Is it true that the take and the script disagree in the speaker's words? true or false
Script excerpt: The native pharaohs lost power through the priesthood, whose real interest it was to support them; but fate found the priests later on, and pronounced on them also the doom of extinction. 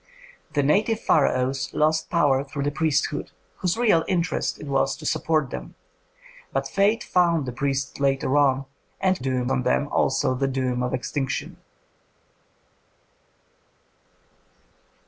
true